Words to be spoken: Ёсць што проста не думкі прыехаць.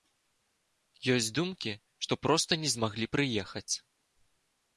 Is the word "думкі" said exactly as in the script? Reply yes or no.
no